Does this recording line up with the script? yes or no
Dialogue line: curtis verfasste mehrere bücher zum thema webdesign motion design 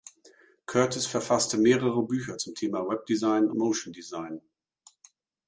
yes